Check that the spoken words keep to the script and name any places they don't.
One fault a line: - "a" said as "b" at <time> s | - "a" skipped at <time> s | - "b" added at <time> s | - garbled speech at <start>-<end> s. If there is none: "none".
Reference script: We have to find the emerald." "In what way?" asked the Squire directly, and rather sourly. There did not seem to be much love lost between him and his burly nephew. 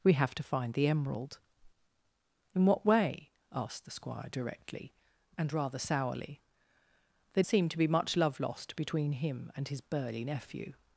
- "did not" skipped at 7.4 s